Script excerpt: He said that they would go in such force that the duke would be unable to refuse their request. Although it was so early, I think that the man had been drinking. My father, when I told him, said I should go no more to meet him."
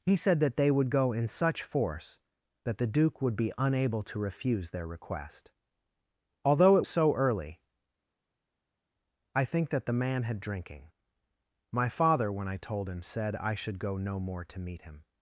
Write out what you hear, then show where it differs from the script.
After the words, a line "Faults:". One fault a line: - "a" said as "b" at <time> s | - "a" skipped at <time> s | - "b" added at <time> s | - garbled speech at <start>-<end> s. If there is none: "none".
He said that they would go in such force that the duke would be unable to refuse their request. Although it so early, I think that the man had drinking. My father, when I told him, said I should go no more to meet him."
Faults:
- "was" skipped at 6.8 s
- "been" skipped at 10.4 s